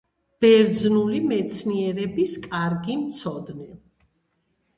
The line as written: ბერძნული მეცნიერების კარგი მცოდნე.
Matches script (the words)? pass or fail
pass